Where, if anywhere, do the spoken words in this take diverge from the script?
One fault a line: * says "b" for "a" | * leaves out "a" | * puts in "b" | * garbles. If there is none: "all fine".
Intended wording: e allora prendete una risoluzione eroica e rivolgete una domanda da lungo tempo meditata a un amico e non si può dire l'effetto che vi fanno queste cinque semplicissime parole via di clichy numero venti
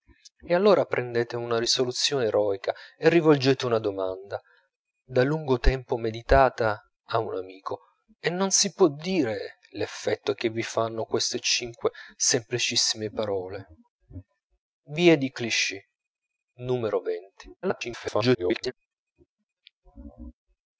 * garbles